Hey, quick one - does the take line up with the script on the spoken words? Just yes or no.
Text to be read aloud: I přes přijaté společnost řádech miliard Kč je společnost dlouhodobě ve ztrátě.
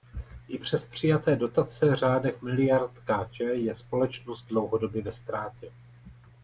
no